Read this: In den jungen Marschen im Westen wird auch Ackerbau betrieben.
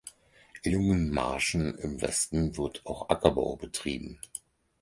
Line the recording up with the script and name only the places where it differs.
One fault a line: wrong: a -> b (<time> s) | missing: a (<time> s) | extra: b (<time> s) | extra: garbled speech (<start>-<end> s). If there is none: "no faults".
missing: den (0.7 s)